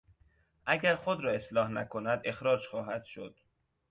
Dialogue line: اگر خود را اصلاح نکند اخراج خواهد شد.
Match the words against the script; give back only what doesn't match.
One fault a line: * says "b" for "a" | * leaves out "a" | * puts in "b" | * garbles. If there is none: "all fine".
all fine